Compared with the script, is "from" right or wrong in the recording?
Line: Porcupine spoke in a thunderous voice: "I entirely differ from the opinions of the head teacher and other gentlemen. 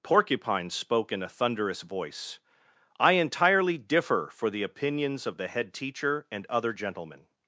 wrong